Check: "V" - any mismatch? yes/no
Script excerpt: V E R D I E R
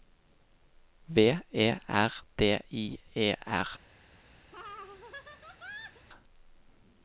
no